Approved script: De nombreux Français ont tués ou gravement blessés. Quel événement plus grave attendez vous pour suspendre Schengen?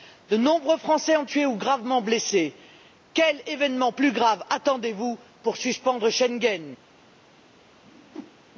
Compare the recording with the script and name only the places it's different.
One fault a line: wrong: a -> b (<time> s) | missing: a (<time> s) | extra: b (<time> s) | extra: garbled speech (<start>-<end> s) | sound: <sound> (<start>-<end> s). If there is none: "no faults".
sound: whoosh (7.8-8.4 s)